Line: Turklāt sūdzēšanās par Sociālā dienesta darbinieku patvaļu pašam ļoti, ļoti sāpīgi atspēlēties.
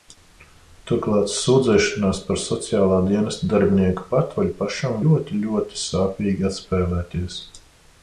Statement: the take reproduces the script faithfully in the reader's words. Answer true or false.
true